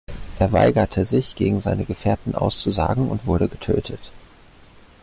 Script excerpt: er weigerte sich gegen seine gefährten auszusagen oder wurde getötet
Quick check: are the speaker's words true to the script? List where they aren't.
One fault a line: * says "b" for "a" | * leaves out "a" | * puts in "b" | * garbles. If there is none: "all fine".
* says "und" for "oder"